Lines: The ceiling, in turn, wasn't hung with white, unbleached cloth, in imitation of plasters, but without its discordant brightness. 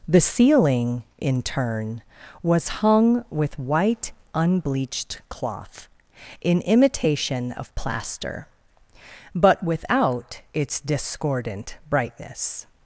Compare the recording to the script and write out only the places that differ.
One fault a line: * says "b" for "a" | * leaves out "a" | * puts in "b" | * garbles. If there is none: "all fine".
* says "was" for "wasn't"
* says "plaster" for "plasters"